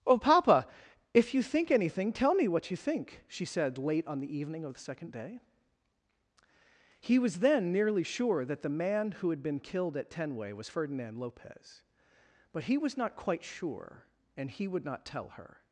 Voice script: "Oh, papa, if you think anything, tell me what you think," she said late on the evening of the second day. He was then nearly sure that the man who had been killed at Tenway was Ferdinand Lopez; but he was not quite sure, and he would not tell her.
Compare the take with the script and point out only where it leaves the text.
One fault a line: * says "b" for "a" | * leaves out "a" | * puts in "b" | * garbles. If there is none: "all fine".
all fine